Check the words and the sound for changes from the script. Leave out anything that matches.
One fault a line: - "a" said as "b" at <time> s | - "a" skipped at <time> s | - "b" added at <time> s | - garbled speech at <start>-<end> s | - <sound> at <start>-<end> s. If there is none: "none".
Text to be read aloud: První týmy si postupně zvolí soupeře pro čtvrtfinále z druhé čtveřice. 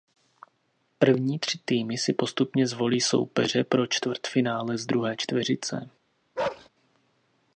- "tři" added at 1.4 s
- bark at 6.4-6.7 s